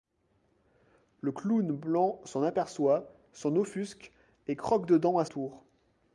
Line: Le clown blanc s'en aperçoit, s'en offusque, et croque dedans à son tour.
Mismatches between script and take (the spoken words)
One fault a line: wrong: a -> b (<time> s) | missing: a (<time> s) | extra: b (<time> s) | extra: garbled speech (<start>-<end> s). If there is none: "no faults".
missing: son (5.2 s)